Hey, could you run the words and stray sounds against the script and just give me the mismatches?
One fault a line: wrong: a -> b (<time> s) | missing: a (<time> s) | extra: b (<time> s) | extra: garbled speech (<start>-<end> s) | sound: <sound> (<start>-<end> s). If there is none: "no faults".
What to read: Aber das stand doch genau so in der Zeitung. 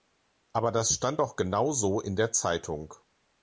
no faults